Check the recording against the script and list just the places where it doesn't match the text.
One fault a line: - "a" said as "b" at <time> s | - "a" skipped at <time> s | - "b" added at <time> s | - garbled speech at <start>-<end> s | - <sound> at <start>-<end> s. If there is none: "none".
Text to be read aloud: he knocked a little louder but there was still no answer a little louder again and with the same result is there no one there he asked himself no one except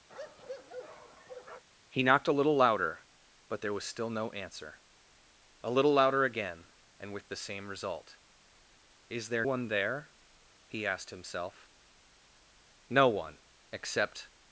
- bark at 0.1-1.6 s
- "no" skipped at 9.4 s